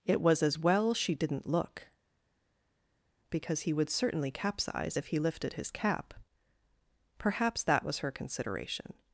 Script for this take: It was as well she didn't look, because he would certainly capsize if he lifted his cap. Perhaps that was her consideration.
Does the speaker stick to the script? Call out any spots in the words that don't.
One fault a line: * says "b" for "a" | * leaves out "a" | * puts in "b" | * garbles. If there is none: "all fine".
all fine